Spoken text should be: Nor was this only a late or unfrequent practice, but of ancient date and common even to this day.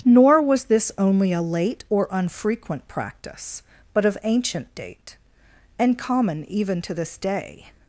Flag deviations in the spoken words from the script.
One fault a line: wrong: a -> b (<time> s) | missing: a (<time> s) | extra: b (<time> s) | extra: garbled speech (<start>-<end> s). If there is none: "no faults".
no faults